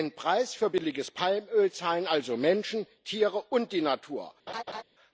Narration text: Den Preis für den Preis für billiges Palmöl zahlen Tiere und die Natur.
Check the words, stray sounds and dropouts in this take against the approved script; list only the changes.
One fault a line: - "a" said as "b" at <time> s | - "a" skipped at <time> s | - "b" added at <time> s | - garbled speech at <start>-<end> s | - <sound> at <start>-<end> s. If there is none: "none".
- "den Preis für" skipped at 0.7 s
- "also Menschen" added at 2.1 s
- laugh at 4.5-4.8 s